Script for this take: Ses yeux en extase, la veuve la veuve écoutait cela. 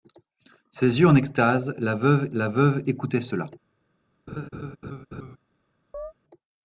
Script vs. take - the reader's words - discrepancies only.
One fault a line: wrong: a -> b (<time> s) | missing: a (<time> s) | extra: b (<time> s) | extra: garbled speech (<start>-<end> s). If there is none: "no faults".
no faults